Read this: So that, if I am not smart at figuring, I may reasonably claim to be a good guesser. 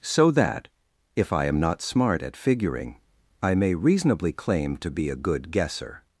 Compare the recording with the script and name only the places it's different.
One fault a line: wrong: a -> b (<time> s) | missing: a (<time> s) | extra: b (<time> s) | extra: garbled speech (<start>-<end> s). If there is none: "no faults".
no faults